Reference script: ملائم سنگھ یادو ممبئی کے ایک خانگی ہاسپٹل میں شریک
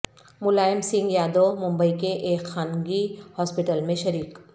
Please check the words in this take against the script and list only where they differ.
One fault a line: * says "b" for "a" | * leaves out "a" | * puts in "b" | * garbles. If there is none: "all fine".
all fine